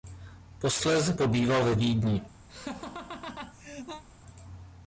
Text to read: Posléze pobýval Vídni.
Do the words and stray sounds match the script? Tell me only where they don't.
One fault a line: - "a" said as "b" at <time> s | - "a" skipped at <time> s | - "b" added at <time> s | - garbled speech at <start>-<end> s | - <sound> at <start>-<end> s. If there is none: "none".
- "ve" added at 1.6 s
- laugh at 2.5-4.0 s